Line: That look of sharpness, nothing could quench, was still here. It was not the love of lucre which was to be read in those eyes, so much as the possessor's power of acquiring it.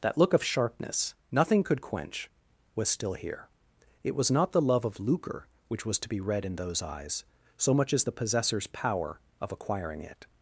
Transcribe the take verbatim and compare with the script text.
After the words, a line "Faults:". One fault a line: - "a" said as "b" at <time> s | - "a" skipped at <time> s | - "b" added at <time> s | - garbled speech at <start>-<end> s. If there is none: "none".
That look of sharpness, nothing could quench, was still here. It was not the love of lucre which was to be read in those eyes, so much as the possessor's power of acquiring it.
Faults:
none